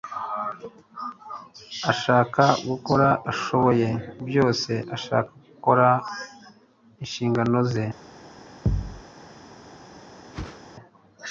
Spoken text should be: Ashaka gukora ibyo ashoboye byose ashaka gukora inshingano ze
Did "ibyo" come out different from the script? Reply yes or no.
yes